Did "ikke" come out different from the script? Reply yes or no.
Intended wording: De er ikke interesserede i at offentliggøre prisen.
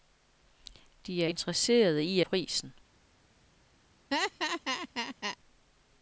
yes